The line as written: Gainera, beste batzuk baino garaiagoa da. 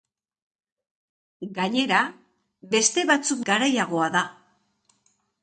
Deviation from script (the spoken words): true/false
true